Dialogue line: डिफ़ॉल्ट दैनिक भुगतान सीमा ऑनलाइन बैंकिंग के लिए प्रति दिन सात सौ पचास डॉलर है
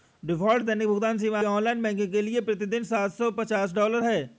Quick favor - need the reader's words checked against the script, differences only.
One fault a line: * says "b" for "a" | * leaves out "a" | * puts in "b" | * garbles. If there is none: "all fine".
all fine